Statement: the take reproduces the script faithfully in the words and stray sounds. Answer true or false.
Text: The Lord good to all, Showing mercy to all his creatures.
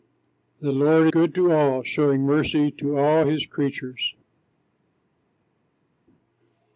true